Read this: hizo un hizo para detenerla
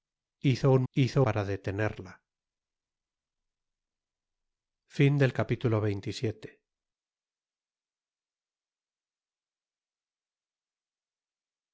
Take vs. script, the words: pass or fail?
pass